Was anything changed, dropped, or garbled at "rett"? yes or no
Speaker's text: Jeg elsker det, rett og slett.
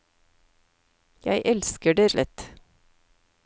yes